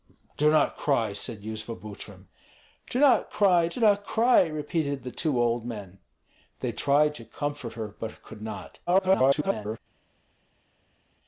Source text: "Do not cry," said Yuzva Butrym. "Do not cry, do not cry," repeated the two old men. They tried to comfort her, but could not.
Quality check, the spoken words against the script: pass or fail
fail